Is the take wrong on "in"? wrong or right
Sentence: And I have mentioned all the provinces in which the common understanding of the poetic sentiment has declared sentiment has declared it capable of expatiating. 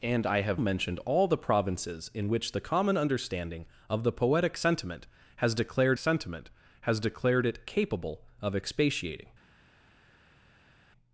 right